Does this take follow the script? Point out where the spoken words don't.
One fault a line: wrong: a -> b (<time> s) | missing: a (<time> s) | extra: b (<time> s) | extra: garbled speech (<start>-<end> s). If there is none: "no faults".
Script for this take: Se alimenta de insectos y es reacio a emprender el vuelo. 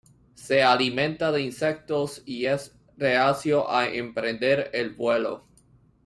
no faults